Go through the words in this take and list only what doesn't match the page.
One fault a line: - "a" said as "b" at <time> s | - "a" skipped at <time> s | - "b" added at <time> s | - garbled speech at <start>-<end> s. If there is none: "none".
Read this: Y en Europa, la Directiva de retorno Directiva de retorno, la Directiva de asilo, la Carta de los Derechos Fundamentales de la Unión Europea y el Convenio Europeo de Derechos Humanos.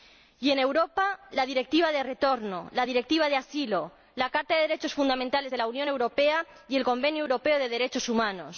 - "Directiva de retorno" skipped at 2.7 s